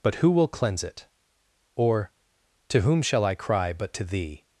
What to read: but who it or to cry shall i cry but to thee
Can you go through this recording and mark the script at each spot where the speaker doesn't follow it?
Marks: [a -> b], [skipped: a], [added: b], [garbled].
but who [added: will cleanse] it or to [cry -> whom] shall i cry but to thee